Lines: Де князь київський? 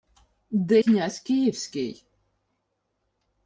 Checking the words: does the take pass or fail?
pass